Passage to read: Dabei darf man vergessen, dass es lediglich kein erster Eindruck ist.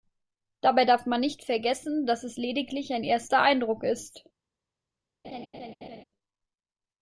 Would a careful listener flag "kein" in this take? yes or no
yes